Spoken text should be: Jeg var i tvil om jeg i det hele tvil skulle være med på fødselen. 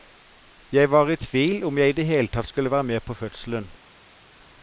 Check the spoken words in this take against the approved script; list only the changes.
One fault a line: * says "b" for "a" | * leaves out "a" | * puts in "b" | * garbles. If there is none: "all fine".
* says "tatt" for "tvil"